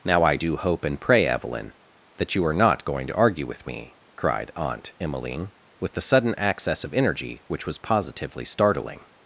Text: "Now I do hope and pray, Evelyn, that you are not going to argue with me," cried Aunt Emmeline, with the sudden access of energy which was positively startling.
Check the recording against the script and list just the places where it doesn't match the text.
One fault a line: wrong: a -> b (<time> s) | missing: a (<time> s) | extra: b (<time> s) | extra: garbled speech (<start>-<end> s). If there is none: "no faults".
no faults